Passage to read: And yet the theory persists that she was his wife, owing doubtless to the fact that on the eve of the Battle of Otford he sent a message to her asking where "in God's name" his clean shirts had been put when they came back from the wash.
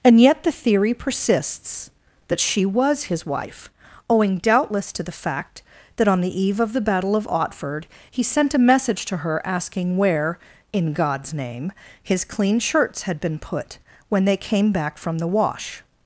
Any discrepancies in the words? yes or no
no